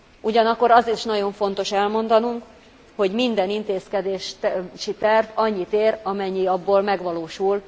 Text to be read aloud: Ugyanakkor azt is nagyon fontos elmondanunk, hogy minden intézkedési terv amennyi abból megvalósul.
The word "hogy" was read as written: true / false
true